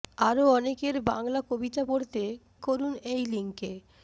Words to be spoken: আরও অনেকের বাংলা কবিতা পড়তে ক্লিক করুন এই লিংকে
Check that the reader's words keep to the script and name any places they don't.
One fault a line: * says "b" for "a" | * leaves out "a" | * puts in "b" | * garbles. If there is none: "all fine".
* leaves out "ক্লিক"